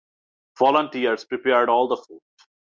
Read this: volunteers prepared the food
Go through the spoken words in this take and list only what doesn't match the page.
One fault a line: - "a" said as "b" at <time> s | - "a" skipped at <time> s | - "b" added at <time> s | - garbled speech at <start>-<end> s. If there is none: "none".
- "all" added at 1.7 s